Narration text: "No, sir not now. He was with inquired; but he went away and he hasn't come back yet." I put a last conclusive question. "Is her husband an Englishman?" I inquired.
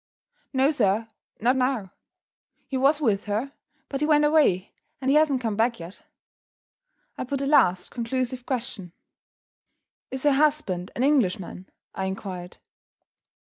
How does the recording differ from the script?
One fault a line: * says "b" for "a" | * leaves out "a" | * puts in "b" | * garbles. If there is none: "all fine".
* says "her" for "inquired"